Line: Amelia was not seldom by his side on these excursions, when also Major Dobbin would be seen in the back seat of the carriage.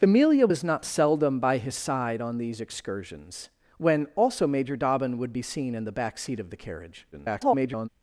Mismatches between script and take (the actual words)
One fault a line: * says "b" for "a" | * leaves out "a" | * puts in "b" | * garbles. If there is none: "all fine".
* garbles